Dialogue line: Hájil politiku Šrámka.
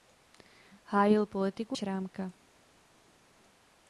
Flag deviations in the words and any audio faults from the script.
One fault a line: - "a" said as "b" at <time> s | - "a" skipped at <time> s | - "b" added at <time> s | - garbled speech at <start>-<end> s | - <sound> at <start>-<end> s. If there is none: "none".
none